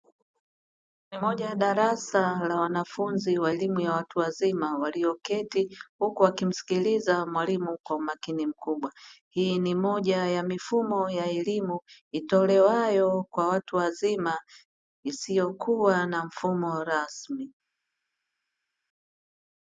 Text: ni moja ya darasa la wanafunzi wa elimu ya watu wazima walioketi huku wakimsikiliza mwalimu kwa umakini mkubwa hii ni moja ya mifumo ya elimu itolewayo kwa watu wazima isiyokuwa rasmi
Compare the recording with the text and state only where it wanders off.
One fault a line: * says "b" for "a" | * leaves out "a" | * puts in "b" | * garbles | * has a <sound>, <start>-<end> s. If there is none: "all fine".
* puts in "na mfumo"